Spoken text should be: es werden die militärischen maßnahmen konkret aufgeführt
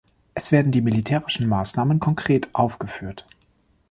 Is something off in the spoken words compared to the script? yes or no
no